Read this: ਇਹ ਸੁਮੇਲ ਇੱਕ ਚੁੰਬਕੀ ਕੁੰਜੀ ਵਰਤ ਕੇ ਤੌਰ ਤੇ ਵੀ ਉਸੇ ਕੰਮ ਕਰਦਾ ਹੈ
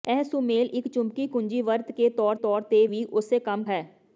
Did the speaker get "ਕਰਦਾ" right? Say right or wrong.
wrong